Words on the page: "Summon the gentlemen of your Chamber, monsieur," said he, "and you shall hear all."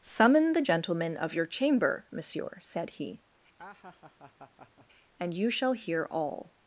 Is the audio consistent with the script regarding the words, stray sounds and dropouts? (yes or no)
no